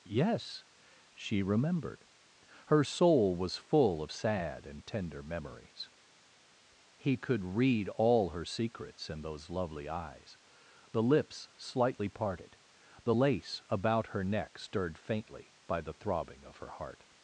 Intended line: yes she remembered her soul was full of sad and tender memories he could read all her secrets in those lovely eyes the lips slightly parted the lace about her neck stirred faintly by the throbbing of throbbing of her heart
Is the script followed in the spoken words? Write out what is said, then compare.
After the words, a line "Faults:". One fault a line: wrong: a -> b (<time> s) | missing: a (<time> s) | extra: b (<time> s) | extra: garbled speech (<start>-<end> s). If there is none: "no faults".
yes she remembered her soul was full of sad and tender memories he could read all her secrets in those lovely eyes the lips slightly parted the lace about her neck stirred faintly by the throbbing of her heart
Faults:
missing: throbbing of (16.6 s)